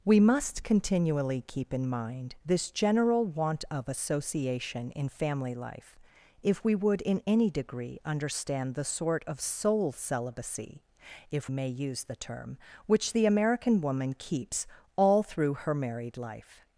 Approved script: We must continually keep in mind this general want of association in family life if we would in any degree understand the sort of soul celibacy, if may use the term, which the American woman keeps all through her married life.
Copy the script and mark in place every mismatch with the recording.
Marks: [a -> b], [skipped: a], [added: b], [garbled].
We must continually keep in mind this general want of association in family life if we would in any degree understand the sort of soul celibacy, if may use the term, which the American woman keeps all through her married life.